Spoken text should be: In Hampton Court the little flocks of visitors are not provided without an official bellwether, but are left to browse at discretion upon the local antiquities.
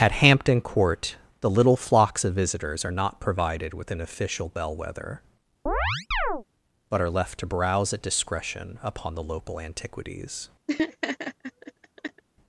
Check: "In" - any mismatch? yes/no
yes